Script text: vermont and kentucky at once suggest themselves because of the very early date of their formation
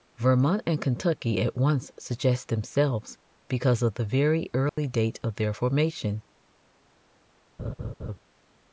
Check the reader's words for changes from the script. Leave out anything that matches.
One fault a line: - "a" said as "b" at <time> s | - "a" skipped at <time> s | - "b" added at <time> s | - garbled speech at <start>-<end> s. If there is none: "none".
none